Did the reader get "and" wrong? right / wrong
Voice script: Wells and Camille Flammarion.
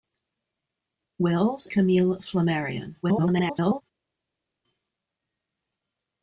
wrong